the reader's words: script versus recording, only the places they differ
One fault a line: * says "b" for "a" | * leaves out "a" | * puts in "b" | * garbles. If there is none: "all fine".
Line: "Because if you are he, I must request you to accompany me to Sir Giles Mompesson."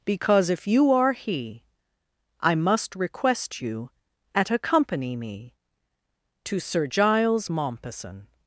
* says "at" for "to"